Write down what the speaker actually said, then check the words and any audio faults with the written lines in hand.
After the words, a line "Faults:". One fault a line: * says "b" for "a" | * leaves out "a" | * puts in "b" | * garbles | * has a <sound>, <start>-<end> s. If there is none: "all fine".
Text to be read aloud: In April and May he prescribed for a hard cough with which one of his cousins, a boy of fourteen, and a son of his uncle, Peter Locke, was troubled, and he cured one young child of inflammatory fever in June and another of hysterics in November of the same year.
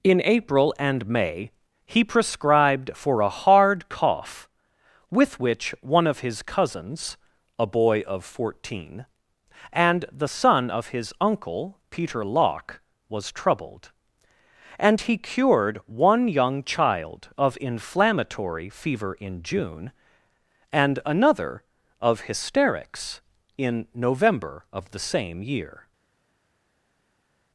In April and May he prescribed for a hard cough with which one of his cousins, a boy of fourteen, and the son of his uncle, Peter Locke, was troubled, and he cured one young child of inflammatory fever in June and another of hysterics in November of the same year.
Faults:
* says "the" for "a"